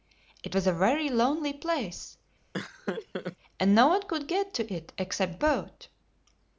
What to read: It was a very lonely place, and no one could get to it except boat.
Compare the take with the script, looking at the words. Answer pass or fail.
pass